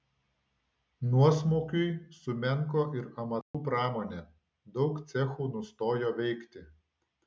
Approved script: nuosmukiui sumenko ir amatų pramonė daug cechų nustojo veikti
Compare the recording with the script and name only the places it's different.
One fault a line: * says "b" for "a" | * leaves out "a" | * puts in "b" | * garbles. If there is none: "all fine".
all fine